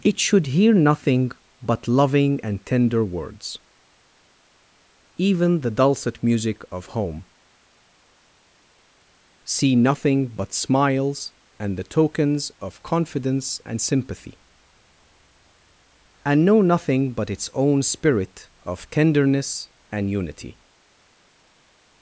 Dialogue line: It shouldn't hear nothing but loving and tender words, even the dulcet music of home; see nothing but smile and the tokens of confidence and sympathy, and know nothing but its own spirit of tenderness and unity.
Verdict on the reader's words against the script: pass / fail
fail